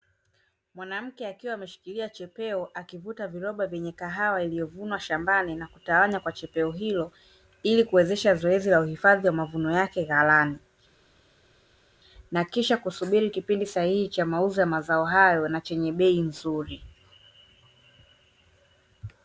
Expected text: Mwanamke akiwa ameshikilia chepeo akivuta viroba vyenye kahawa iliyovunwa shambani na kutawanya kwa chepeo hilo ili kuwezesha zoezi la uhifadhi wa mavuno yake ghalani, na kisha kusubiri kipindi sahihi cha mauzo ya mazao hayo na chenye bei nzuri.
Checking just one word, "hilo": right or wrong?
right